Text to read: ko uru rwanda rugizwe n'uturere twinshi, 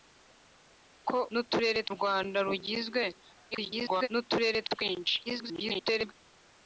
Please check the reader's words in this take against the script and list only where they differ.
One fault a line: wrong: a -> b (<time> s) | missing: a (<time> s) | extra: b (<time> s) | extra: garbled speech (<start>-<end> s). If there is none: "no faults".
wrong: uru -> n'uturere (1.3 s)
extra: garbled speech (3.5-4.1 s)
extra: garbled speech (5.2-6.1 s)